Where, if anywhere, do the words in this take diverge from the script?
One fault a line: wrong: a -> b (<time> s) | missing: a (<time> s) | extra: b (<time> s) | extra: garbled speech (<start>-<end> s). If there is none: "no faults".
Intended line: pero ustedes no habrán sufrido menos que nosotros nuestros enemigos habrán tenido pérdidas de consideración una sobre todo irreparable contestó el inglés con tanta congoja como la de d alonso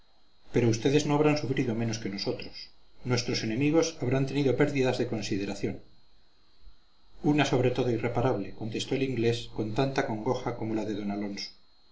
no faults